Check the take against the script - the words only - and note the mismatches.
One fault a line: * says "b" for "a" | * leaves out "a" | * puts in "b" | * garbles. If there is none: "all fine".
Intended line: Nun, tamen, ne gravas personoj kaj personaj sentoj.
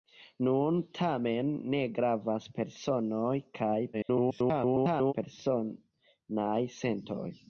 * garbles